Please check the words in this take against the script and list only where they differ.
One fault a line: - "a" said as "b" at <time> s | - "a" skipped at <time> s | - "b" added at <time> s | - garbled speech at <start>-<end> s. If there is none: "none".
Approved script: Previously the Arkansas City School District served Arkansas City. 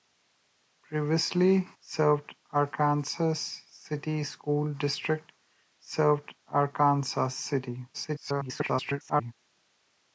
- "the" said as "served" at 1.8 s
- garbled speech at 7.9-9.3 s